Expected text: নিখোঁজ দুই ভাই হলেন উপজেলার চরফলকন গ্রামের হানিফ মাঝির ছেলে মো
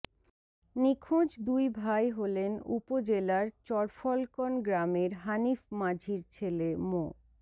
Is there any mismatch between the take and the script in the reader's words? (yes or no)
no